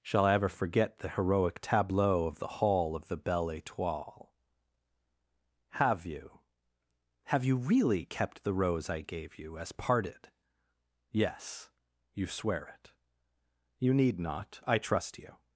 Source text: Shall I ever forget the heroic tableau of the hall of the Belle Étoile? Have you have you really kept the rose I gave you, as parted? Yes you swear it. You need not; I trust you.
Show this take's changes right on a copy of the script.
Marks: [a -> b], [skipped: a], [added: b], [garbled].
Shall I ever forget the heroic tableau of the hall of the Belle Étoile? Have you have you really kept the rose I gave you, as parted? Yes you swear it. You need not; I trust you.